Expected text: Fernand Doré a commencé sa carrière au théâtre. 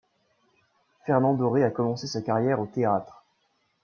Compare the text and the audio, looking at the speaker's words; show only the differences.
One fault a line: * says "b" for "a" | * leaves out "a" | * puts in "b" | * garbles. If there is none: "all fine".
all fine